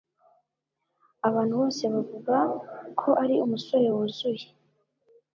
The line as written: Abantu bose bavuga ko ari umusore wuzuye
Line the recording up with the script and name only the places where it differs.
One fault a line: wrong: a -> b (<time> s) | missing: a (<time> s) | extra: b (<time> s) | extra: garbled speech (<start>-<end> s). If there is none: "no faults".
no faults